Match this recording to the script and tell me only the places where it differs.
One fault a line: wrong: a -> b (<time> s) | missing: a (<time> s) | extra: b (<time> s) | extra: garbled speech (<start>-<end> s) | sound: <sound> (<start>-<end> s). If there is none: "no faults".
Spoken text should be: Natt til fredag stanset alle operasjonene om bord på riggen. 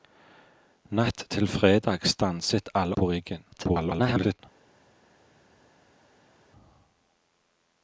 missing: operasjonene om bord (3.0 s)
extra: garbled speech (3.5-4.4 s)